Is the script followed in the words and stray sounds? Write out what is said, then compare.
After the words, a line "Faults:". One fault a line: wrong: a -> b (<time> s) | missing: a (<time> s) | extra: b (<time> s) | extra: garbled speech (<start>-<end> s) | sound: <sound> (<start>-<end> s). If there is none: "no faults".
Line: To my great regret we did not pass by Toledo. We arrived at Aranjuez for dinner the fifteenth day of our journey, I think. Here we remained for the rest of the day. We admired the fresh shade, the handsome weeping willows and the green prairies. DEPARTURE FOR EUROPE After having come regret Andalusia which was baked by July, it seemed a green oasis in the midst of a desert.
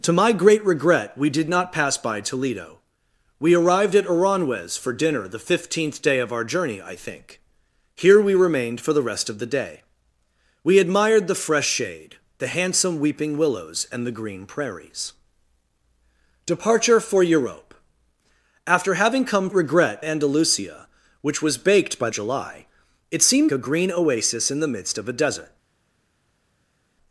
To my great regret we did not pass by Toledo. We arrived at Aranjuez for dinner the fifteenth day of our journey, I think. Here we remained for the rest of the day. We admired the fresh shade, the handsome weeping willows and the green prairies. DEPARTURE FOR EUROPE After having come regret Andalusia which was baked by July, it seemed a green oasis in the midst of a desert.
Faults:
no faults